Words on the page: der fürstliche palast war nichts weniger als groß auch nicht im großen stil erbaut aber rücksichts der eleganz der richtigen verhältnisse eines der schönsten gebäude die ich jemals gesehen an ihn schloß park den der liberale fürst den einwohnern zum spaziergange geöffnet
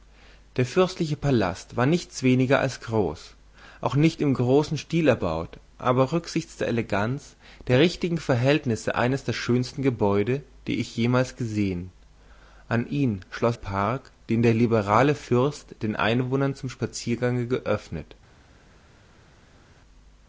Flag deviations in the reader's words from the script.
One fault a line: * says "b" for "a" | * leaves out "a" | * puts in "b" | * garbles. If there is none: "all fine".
all fine